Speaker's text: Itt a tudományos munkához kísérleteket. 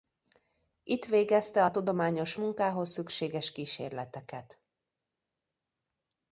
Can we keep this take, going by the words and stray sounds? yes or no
no